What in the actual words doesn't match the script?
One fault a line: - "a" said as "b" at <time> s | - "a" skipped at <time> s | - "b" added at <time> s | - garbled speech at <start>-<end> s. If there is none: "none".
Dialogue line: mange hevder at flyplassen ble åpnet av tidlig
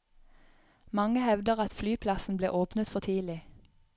- "av" said as "for" at 2.9 s